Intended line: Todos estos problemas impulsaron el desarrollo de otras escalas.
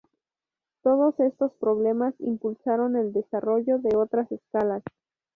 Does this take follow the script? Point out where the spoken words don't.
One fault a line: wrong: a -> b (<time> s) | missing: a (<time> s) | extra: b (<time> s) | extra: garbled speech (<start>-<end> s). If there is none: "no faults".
no faults